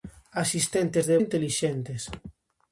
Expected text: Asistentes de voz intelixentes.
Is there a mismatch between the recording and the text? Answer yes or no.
yes